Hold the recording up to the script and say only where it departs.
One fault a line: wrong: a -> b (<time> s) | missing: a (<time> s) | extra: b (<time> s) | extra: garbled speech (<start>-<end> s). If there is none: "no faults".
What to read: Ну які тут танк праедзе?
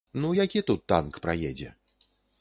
no faults